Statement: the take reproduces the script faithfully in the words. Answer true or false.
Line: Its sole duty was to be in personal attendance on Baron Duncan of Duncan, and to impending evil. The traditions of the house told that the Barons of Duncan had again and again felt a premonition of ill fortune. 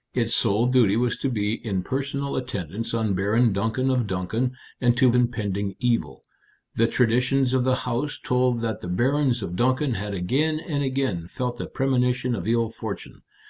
true